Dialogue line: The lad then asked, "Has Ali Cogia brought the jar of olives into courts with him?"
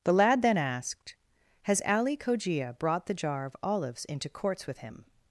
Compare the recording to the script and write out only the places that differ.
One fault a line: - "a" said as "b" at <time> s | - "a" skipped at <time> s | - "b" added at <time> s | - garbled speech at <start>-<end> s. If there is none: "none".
none